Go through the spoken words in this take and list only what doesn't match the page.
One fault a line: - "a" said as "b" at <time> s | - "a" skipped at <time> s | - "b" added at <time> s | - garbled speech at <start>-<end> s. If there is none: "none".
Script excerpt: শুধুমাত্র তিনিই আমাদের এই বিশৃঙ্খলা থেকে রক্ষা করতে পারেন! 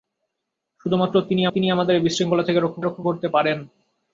- "তিনিই" added at 1.5 s
- "রক্ষা" added at 2.8 s